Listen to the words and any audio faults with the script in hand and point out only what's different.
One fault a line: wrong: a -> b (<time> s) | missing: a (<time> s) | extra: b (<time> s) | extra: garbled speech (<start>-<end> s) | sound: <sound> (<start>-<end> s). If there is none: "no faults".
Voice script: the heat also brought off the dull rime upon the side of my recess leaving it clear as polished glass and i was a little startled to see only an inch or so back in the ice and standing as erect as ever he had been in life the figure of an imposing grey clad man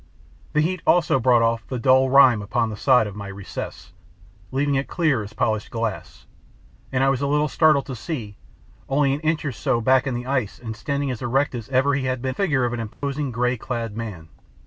missing: in life the (12.3 s)
sound: dropout (12.9-13.0 s)